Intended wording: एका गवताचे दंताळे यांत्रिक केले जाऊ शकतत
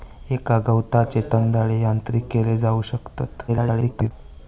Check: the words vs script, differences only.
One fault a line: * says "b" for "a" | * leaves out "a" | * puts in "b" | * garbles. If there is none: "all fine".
* garbles